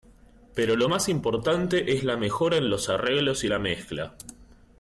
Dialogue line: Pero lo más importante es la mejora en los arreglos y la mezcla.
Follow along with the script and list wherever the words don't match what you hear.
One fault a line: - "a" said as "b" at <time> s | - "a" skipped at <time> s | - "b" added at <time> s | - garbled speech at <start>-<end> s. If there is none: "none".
none